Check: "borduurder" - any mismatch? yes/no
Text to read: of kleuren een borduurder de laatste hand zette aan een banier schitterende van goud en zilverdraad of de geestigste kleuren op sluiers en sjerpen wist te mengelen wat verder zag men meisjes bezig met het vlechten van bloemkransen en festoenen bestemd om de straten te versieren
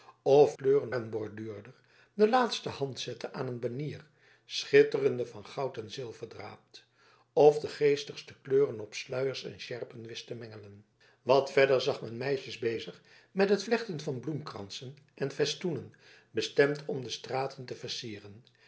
no